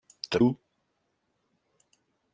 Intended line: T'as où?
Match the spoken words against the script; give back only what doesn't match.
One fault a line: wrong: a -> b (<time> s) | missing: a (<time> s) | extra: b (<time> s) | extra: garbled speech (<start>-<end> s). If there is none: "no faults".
no faults